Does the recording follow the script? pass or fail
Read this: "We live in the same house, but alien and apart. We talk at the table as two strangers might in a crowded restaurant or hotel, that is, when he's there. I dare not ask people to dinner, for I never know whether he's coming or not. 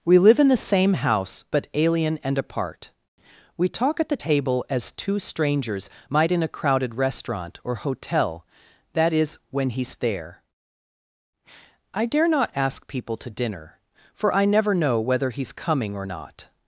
pass